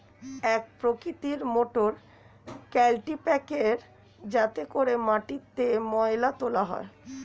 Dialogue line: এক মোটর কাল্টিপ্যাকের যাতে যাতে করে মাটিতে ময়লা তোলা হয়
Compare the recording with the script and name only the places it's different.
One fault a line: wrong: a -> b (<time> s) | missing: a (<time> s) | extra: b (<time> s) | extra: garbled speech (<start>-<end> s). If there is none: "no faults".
extra: প্রকৃতির (0.8 s)
missing: যাতে (4.6 s)